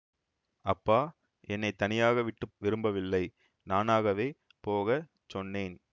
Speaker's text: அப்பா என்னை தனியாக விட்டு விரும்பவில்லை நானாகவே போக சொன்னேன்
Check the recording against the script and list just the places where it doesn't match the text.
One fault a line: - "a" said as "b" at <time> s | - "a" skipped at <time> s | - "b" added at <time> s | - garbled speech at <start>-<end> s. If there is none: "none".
none